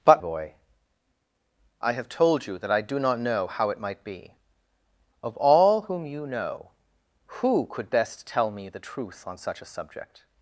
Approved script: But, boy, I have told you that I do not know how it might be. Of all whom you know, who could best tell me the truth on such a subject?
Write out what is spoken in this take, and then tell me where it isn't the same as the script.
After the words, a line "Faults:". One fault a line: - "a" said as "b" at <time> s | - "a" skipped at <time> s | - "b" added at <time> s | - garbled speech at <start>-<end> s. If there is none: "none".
But, boy, I have told you that I do not know how it might be. Of all whom you know, who could best tell me the truth on such a subject?
Faults:
none